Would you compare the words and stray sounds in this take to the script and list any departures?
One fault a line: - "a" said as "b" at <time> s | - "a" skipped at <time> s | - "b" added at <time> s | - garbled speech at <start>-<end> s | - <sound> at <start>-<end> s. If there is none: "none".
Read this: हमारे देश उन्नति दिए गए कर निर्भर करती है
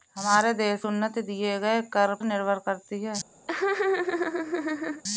- laugh at 3.5-5.0 s